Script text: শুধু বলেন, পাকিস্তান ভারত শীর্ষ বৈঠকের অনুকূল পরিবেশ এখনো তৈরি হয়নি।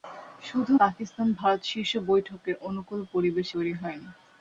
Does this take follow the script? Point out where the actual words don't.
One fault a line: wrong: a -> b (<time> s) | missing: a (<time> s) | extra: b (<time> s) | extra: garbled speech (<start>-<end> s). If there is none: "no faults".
missing: বলেন (0.7 s)
missing: এখনো (3.5 s)